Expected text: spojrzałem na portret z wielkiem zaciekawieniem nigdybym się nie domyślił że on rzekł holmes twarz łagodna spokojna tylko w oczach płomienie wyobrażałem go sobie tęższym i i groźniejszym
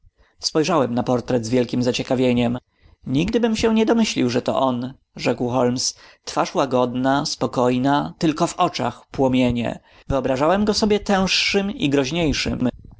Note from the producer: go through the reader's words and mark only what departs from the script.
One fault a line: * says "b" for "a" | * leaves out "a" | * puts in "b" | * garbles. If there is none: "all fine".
* puts in "to"
* leaves out "i"